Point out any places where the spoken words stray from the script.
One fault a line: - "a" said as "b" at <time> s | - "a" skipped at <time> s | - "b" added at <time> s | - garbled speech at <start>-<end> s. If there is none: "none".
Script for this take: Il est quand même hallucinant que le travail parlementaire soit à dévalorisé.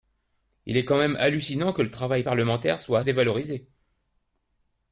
none